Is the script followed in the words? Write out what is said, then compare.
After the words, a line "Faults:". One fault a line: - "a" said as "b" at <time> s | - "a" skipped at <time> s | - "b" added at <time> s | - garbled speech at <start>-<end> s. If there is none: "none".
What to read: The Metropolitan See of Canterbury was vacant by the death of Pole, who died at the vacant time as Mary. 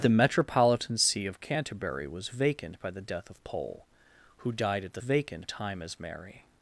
The Metropolitan See of Canterbury was vacant by the death of Pole, who died at the vacant time as Mary.
Faults:
none